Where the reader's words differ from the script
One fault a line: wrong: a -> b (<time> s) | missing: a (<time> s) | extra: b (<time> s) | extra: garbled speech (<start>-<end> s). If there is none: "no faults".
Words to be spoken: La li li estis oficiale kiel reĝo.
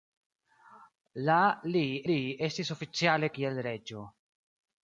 no faults